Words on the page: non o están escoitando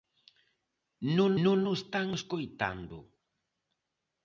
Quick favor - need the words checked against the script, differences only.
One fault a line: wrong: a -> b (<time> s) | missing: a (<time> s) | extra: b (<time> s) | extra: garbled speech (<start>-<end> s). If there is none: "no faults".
extra: non (1.4 s)